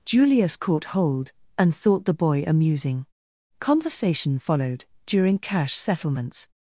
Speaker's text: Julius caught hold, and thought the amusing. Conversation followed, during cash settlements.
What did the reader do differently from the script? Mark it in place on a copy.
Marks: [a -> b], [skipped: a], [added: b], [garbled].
Julius caught hold, and thought the [added: boy] amusing. Conversation followed, during cash settlements.